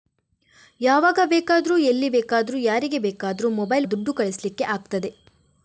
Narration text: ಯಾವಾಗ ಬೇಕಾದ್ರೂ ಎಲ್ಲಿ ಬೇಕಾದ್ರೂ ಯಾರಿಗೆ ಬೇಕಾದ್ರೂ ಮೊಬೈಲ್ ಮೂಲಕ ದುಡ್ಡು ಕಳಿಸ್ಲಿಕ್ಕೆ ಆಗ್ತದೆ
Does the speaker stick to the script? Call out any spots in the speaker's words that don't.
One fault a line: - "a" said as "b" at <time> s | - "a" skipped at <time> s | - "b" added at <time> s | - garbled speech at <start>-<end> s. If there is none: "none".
- "ಮೂಲಕ" skipped at 3.9 s